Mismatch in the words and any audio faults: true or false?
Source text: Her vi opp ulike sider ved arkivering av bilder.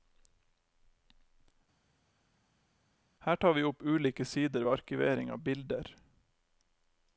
true